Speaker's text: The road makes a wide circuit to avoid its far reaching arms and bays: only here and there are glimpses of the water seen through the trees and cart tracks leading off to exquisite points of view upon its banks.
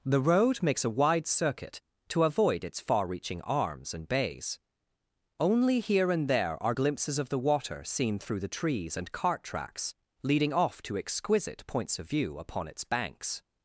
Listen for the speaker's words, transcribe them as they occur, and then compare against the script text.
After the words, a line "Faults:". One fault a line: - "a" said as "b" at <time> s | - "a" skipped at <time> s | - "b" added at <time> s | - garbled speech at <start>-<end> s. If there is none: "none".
The road makes a wide circuit to avoid its far reaching arms and bays: only here and there are glimpses of the water seen through the trees and cart tracks leading off to exquisite points of view upon its banks.
Faults:
none